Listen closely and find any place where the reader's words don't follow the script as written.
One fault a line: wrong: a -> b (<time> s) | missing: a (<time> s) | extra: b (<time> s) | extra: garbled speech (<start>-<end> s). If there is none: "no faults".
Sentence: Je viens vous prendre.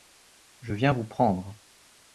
no faults